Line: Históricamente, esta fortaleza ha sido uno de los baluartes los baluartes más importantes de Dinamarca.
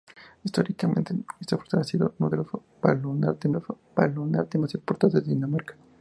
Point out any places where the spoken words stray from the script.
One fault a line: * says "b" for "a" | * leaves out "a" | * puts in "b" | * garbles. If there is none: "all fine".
all fine